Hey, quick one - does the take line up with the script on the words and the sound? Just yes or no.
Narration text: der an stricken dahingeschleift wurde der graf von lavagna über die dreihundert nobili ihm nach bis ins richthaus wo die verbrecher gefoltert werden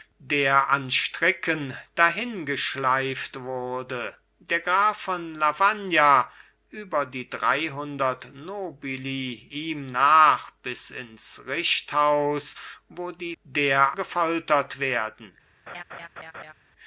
no